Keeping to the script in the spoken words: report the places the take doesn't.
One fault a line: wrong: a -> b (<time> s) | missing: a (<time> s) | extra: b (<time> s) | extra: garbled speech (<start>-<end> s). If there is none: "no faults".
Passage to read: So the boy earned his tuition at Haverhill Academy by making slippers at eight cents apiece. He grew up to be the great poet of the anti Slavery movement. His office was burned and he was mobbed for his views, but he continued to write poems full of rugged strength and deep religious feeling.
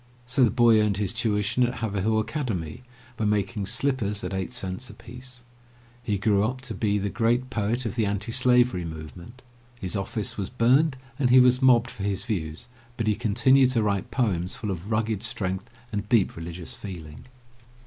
no faults